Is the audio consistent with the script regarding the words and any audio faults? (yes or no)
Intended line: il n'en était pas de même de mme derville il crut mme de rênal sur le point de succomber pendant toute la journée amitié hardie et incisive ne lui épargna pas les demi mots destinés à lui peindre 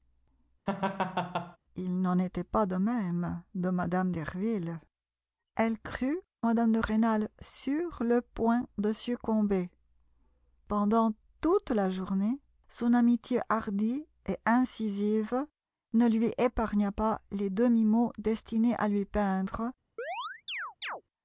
no